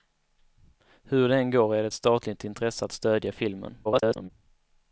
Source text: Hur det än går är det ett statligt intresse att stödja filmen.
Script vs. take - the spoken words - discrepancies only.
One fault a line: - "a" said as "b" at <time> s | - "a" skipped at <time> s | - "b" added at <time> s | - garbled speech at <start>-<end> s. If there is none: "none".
- garbled speech at 3.8-4.3 s